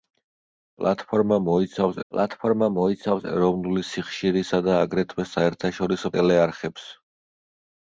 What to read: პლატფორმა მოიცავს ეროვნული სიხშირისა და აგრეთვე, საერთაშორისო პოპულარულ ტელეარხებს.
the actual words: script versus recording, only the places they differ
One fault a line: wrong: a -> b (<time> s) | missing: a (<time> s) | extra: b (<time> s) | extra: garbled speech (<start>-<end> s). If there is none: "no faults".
extra: პლატფორმა მოიცავს (2.1 s)
missing: პოპულარულ (6.1 s)